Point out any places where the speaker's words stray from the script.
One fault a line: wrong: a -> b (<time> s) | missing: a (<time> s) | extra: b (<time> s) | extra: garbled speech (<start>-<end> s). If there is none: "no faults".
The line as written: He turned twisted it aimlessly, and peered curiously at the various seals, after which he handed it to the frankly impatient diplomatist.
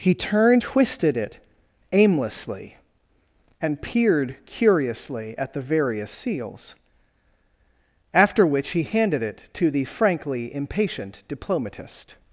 no faults